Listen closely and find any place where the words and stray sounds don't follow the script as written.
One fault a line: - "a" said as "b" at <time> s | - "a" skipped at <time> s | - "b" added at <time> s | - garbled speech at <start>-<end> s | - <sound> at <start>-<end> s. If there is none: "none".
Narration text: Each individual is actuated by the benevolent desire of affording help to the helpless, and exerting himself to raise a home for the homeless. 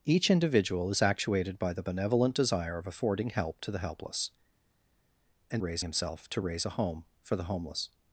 - "exerting" said as "raise" at 5.6 s